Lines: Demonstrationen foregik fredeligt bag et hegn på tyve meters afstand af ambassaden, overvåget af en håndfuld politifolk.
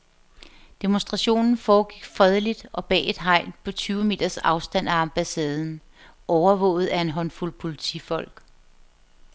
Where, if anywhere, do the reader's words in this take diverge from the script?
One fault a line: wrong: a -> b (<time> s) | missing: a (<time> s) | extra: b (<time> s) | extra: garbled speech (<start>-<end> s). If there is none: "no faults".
extra: og (2.7 s)